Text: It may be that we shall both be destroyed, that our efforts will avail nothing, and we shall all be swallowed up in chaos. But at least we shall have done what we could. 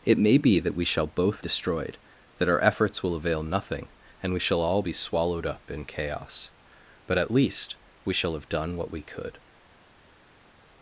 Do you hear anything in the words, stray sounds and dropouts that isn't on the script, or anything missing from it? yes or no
yes